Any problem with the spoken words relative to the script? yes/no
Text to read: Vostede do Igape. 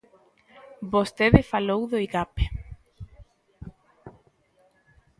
yes